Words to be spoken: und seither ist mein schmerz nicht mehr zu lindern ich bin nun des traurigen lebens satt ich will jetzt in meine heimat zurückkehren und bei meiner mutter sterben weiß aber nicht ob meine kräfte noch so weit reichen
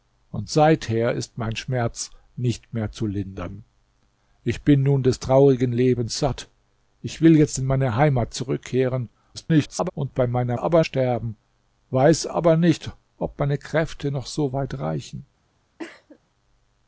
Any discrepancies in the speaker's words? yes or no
yes